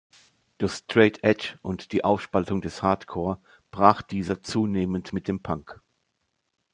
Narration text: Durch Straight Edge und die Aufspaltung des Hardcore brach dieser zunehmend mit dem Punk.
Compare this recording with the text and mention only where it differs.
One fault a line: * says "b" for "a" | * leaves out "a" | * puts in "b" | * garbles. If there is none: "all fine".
all fine